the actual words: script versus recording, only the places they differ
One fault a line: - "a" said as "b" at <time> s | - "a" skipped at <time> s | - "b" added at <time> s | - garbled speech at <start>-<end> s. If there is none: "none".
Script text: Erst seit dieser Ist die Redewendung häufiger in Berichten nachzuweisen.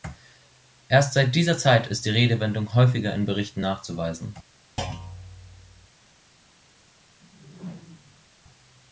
- "Zeit" added at 1.6 s